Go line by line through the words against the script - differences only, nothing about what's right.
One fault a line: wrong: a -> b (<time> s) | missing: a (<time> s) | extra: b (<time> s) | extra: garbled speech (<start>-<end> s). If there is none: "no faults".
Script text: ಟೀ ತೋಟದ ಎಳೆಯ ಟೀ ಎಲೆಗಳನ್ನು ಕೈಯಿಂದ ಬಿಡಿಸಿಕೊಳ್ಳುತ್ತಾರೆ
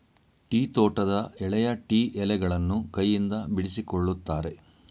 no faults